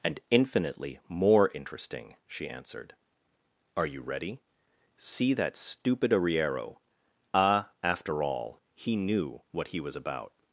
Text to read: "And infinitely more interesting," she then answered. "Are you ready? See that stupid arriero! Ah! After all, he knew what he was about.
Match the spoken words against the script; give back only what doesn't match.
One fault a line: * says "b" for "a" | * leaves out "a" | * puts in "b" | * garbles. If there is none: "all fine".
* leaves out "then"